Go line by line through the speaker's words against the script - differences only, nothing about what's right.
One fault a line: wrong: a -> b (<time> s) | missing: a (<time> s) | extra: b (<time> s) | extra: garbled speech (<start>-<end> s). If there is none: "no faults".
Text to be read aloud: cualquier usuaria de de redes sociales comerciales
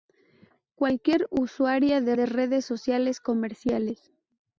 no faults